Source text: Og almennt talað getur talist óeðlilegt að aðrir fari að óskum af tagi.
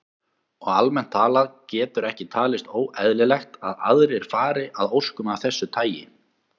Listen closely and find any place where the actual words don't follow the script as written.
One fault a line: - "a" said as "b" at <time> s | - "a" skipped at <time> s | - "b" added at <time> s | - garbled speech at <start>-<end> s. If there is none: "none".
- "ekki" added at 2.1 s
- "þessu" added at 5.5 s